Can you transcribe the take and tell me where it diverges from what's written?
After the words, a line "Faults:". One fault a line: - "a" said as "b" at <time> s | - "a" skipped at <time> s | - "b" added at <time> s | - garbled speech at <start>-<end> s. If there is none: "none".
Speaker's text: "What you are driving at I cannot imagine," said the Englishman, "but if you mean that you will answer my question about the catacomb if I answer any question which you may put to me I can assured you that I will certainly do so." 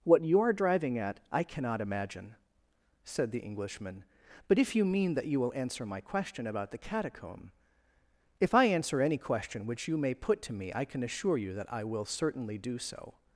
"What you are driving at I cannot imagine," said the Englishman, "but if you mean that you will answer my question about the catacomb if I answer any question which you may put to me I can assure you that I will certainly do so."
Faults:
- "assured" said as "assure" at 11.0 s